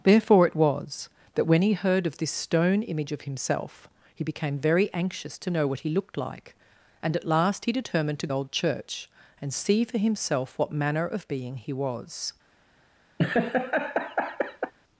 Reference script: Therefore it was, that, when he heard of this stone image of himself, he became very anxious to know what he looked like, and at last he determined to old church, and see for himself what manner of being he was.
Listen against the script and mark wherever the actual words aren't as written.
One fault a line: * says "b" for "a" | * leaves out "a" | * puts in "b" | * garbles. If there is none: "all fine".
all fine